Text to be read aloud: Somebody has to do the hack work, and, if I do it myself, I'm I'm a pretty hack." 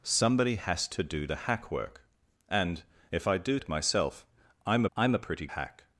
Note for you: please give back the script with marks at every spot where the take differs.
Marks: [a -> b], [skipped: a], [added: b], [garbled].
Somebody has to do the hack work, and, if I do it myself, I'm I'm a pretty hack."